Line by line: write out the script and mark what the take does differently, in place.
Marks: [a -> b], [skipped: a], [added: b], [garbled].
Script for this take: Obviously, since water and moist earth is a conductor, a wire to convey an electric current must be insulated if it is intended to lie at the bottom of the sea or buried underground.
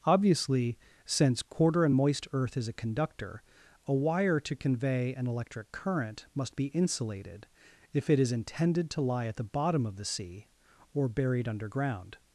Obviously, since [water -> quarter] and moist earth is a conductor, a wire to convey an electric current must be insulated if it is intended to lie at the bottom of the sea or buried underground.